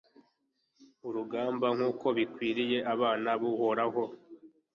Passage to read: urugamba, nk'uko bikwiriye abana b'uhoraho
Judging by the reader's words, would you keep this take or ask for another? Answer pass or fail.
pass